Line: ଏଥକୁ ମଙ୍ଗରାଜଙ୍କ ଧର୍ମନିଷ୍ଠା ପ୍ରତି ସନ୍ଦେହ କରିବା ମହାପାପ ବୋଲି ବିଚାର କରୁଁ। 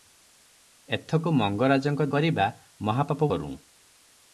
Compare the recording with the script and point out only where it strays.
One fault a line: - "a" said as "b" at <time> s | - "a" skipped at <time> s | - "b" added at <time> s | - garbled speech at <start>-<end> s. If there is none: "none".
- "ଧର୍ମନିଷ୍ଠା ପ୍ରତି ସନ୍ଦେହ" skipped at 2.1 s
- "ବୋଲି ବିଚାର" skipped at 3.3 s